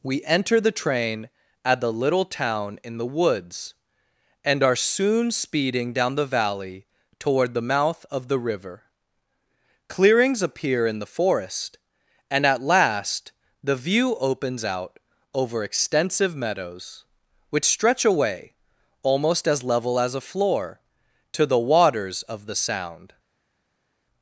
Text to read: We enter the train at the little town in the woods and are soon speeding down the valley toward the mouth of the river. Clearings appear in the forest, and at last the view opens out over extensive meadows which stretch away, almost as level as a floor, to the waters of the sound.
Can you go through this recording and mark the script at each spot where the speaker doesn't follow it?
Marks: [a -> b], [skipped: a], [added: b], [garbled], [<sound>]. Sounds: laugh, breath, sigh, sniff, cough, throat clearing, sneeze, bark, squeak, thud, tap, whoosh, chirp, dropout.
We enter the train at the little town in the woods and are soon speeding down the valley toward the mouth of the river. Clearings appear in the forest, and at last the view opens out over extensive meadows which stretch away, almost as level as a floor, to the waters of the sound.